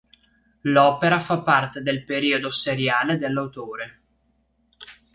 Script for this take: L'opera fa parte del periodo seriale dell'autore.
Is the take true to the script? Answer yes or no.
yes